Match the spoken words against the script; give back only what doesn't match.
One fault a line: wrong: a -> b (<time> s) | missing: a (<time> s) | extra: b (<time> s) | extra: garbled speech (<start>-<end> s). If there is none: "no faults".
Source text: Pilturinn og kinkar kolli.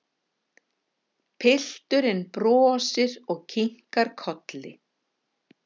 extra: brosir (2.4 s)